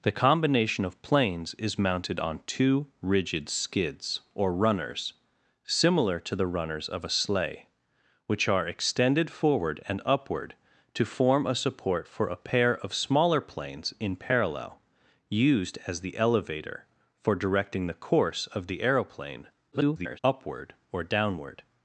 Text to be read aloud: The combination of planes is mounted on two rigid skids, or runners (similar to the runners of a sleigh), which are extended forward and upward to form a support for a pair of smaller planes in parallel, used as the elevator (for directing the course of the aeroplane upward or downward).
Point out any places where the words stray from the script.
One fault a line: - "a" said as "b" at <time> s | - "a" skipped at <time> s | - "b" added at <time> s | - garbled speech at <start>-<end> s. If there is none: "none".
- garbled speech at 19.7-20.2 s